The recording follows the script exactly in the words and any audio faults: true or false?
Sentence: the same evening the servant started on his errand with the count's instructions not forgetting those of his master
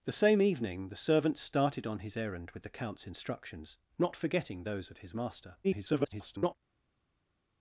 false